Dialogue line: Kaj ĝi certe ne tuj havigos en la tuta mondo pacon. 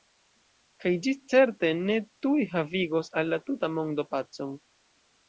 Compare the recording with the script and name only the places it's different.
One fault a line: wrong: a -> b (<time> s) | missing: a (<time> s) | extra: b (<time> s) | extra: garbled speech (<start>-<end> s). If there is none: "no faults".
wrong: en -> al (3.2 s)